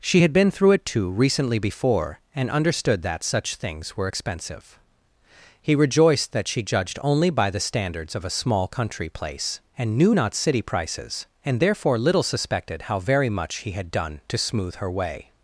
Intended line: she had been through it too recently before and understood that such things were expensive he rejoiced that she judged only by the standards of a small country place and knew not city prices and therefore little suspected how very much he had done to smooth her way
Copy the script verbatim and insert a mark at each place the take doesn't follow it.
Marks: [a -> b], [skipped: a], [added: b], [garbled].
she had been through it too recently before and understood that such things were expensive he rejoiced that she judged only by the standards of a small country place and knew not city prices and therefore little suspected how very much he had done to smooth her way